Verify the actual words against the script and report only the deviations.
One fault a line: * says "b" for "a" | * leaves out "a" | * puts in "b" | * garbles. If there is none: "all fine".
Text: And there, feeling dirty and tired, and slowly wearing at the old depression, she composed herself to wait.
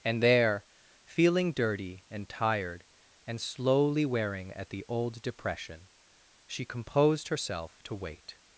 all fine